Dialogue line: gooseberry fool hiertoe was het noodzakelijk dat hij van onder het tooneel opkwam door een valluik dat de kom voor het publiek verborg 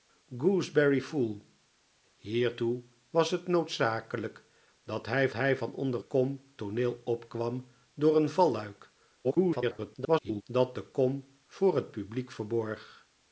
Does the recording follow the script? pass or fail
fail